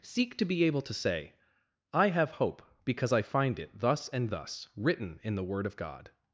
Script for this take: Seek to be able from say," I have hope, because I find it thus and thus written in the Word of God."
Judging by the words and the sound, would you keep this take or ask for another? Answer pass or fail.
fail